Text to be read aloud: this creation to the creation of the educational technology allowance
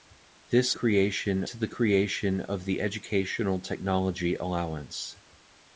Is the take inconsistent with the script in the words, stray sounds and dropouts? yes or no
no